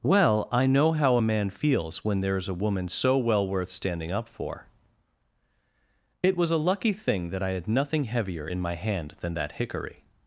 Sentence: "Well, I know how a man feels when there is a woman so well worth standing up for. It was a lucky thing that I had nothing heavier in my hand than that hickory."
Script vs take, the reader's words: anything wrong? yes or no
no